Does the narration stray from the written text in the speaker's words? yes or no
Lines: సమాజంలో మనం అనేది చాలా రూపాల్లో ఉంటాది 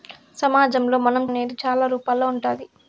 no